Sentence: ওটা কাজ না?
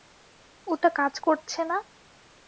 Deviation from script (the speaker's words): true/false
true